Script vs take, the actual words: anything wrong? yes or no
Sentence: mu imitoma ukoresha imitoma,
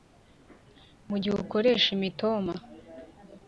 yes